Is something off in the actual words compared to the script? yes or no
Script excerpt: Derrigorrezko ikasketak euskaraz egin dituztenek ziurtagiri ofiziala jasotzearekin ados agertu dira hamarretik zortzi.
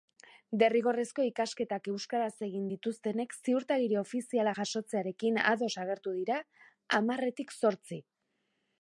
no